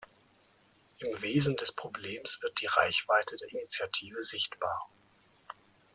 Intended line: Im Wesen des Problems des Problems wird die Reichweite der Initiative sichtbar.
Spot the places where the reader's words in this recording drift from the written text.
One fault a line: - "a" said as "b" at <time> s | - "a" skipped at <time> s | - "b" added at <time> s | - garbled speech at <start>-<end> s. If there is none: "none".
- "des Problems" skipped at 2.4 s